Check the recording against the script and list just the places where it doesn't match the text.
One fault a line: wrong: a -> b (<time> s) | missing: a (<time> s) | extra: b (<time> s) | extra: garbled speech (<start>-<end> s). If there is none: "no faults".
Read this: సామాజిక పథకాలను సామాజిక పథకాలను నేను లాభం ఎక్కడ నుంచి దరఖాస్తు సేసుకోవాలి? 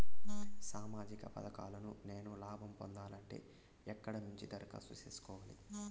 missing: సామాజిక పథకాలను (1.9 s)
extra: పొందాలంటే (2.7 s)